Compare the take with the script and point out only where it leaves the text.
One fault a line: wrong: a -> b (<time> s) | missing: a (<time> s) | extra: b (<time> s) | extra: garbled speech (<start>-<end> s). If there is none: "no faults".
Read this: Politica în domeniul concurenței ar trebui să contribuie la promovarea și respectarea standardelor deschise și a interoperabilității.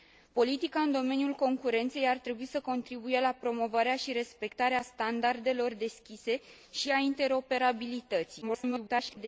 extra: garbled speech (8.4-9.3 s)